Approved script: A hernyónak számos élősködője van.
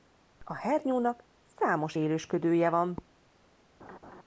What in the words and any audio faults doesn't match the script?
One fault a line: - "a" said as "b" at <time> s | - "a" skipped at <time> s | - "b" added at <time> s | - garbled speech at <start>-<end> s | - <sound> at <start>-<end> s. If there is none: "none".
- laugh at 3.8-4.2 s